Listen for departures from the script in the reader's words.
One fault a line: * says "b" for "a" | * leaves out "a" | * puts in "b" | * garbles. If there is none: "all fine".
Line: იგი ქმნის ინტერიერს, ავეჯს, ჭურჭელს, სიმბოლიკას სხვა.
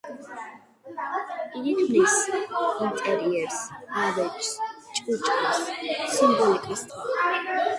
all fine